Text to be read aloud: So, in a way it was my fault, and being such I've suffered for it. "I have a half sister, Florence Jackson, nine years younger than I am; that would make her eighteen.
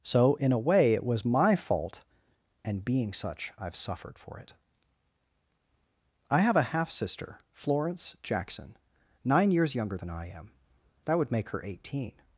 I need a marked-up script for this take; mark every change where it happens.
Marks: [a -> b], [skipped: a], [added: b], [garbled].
So, in a way it was my fault, and being such I've suffered for it. "I have a half sister, Florence Jackson, nine years younger than I am; that would make her eighteen.